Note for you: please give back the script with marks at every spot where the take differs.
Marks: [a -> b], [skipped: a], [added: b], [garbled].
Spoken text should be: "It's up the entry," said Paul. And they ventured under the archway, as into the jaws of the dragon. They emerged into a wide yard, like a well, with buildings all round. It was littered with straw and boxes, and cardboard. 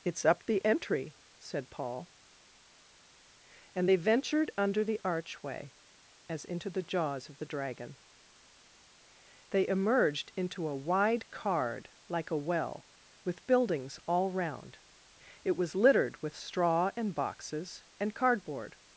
"It's up the entry," said Paul. And they ventured under the archway, as into the jaws of the dragon. They emerged into a wide [yard, -> card] like a well, with buildings all round. It was littered with straw and boxes, and cardboard.